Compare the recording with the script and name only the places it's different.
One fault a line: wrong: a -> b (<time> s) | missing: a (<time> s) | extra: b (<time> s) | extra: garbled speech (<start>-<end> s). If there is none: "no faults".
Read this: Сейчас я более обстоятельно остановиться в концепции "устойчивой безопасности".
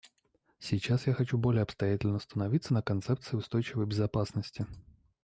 extra: хочу (1.1 s)
wrong: в -> на (2.7 s)